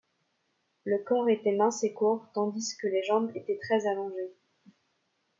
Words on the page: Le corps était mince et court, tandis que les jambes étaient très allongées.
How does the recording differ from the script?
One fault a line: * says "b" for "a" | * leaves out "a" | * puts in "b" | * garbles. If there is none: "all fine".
all fine